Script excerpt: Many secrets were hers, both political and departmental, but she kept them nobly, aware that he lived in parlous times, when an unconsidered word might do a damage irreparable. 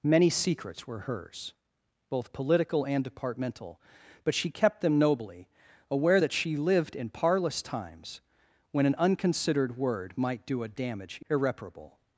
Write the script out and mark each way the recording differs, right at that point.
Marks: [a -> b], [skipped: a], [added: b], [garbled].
Many secrets were hers, both political and departmental, but she kept them nobly, aware that [he -> she] lived in parlous times, when an unconsidered word might do a damage irreparable.